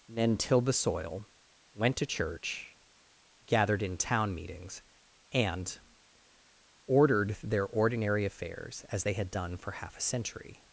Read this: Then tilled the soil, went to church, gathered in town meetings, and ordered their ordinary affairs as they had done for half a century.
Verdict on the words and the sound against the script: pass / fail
pass